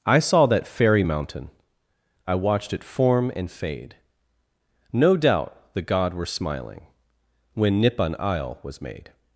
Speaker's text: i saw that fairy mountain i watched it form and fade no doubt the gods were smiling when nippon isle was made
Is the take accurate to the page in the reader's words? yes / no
no